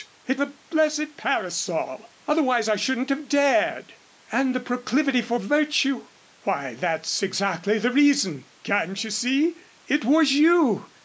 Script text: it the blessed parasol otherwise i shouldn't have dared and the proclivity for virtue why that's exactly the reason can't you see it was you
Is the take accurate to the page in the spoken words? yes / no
yes